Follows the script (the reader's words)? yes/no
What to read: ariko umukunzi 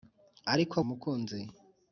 yes